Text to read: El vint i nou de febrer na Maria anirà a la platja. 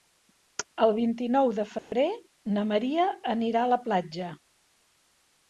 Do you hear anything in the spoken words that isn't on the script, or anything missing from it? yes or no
no